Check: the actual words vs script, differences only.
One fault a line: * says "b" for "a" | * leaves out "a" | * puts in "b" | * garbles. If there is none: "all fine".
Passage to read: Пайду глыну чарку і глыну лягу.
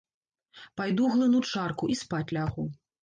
* says "спаць" for "глыну"